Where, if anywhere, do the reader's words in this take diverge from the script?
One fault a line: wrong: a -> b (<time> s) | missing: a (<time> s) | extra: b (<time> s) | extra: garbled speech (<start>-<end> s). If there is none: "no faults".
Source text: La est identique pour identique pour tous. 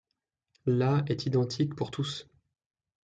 missing: identique pour (1.9 s)